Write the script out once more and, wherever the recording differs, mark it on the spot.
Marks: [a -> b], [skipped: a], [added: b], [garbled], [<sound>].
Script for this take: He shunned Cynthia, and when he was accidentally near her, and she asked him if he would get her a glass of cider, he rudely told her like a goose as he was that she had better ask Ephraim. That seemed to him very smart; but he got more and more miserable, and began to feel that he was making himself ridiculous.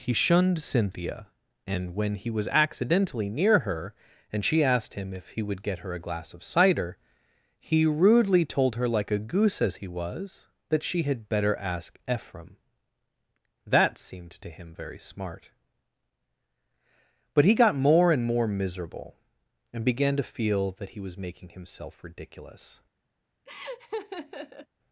He shunned Cynthia, and when he was accidentally near her, and she asked him if he would get her a glass of cider, he rudely told her like a goose as he was that she had better ask Ephraim. That seemed to him very smart; but he got more and more miserable, and began to feel that he was making himself ridiculous. [laugh]